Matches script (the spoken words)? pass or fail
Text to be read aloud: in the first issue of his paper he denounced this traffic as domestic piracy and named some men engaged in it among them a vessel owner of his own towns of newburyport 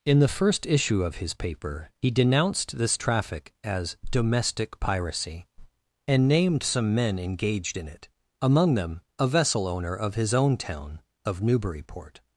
fail